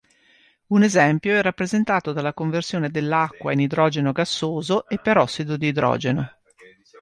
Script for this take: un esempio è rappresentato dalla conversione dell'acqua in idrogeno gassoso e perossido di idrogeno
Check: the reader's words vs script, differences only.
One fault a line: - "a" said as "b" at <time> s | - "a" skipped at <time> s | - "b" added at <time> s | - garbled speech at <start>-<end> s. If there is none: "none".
none